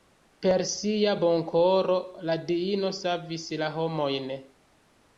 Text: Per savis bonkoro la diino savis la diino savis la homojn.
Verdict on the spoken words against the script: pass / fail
fail